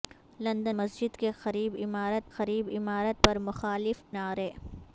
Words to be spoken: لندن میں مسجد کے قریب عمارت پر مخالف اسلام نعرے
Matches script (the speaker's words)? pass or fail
fail